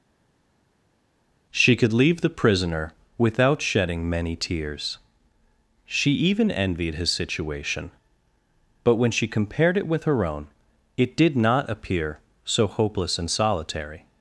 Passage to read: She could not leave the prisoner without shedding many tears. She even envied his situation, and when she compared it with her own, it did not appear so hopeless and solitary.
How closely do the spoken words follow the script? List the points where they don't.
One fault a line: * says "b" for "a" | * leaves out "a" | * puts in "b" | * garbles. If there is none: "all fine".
* leaves out "not"
* says "but" for "and"